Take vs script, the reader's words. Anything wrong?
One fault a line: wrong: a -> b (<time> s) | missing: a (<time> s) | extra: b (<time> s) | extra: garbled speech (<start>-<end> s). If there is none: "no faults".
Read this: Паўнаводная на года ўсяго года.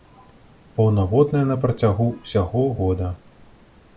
wrong: года -> працягу (1.6 s)